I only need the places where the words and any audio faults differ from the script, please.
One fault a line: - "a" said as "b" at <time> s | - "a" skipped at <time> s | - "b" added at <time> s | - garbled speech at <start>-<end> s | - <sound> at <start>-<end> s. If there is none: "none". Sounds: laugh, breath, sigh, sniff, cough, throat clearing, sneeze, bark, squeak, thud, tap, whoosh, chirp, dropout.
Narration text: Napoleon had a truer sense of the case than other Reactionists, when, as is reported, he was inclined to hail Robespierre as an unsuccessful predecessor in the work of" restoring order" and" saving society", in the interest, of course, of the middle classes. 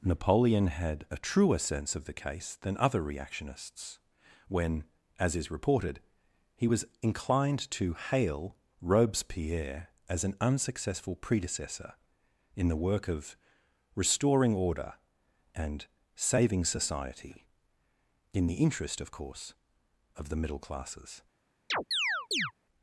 - chirp at 21.7-22.5 s